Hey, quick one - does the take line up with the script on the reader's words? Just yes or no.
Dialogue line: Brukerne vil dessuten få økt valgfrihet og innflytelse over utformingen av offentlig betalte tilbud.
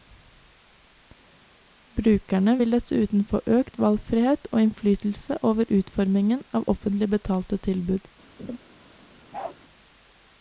yes